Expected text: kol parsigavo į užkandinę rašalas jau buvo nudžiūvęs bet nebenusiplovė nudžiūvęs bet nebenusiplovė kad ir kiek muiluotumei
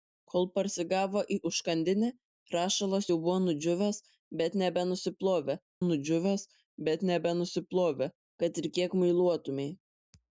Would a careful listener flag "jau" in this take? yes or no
no